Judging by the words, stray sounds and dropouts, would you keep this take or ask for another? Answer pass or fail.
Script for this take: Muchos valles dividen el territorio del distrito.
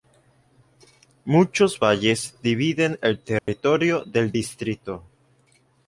fail